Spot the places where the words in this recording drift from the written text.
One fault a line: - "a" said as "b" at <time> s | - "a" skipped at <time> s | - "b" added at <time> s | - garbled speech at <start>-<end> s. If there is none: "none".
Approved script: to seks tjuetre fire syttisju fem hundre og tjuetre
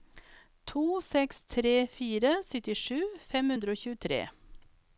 - "tjuetre" said as "tre" at 1.6 s